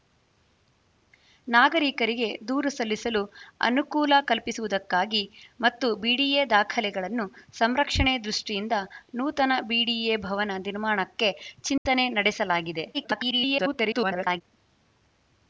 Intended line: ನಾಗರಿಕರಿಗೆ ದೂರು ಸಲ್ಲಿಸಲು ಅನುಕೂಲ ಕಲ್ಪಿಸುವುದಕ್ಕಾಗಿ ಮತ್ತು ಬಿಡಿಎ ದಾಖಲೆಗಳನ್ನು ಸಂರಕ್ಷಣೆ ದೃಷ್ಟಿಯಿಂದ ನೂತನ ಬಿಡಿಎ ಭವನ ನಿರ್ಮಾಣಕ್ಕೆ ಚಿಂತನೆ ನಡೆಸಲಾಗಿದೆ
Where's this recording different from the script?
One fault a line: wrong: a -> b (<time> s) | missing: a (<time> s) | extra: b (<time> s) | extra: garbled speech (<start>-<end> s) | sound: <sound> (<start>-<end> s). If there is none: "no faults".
sound: dropout (11.8-11.9 s)
extra: garbled speech (12.9-14.4 s)